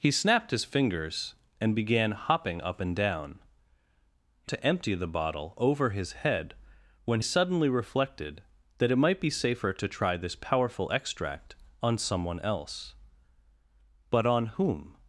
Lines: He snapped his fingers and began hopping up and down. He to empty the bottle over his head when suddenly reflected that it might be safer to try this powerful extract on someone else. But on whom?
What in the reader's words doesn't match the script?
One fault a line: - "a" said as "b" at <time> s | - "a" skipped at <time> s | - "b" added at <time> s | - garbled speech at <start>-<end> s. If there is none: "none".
none